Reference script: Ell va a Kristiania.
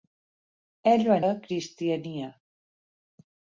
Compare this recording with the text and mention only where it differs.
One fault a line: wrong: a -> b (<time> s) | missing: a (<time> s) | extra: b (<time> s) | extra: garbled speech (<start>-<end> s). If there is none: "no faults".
no faults